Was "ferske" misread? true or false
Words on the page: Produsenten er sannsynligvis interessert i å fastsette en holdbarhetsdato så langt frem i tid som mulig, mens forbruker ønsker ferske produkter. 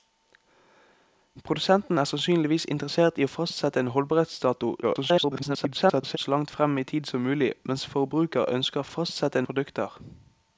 true